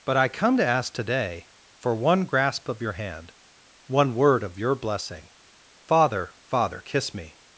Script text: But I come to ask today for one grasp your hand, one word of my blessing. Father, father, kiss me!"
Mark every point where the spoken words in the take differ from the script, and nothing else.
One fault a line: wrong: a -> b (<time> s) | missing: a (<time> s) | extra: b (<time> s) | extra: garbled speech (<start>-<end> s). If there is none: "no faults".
extra: of (2.7 s)
wrong: my -> your (4.6 s)